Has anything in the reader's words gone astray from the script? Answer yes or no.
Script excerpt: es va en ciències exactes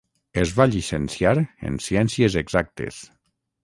yes